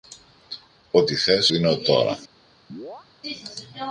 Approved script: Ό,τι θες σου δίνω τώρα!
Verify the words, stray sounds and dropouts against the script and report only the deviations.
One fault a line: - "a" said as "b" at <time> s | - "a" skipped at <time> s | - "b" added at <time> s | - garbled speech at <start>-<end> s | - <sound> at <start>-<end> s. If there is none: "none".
- "σου" skipped at 1.5 s
- chirp at 2.7-3.1 s